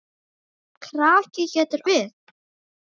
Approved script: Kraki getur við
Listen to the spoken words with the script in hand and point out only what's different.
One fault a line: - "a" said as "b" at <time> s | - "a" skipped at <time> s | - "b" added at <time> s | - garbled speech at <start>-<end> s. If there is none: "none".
none